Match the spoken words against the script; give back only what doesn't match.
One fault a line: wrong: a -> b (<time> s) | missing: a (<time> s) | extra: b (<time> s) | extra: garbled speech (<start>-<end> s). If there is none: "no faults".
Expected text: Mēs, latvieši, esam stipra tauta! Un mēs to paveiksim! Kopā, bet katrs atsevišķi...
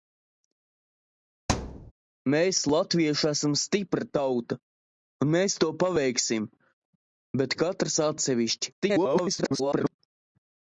missing: Kopā (6.5 s)
extra: garbled speech (8.8-9.9 s)